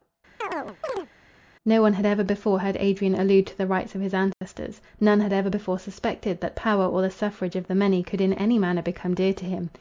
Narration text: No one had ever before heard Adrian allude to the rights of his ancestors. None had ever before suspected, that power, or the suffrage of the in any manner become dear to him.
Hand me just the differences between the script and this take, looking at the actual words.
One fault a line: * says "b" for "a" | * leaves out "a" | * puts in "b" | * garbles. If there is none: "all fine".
* puts in "many could"